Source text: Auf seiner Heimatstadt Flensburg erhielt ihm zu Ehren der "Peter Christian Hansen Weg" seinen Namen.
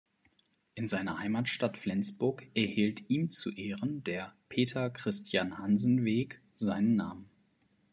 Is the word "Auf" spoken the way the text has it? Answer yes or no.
no